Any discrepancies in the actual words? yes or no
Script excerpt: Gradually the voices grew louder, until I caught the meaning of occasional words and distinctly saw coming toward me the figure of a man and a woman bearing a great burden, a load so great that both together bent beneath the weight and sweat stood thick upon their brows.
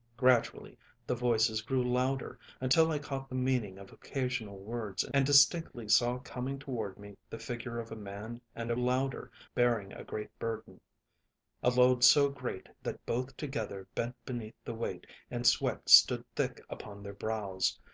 yes